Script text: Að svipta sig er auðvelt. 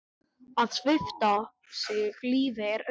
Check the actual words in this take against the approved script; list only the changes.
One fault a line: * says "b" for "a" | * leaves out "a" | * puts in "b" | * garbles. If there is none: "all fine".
* puts in "lífi"